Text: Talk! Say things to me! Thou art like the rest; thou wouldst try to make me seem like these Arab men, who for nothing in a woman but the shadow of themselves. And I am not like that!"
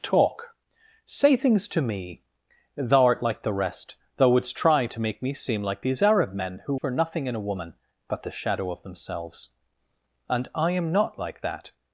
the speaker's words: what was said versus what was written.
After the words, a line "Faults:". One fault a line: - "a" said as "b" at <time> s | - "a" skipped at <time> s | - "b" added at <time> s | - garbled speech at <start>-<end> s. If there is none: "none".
Talk! Say things to me! Thou art like the rest; thou wouldst try to make me seem like these Arab men, who for nothing in a woman but the shadow of themselves. And I am not like that!"
Faults:
none